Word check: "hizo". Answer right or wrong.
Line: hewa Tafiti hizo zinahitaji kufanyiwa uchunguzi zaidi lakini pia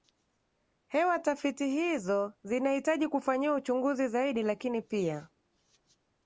right